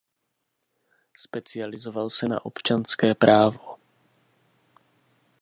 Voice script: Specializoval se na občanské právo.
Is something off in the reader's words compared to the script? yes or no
no